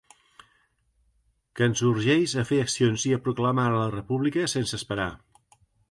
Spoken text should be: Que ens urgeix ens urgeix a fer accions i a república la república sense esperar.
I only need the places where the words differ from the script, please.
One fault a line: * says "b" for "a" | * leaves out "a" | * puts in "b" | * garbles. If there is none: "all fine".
* leaves out "ens urgeix"
* says "proclamar" for "república"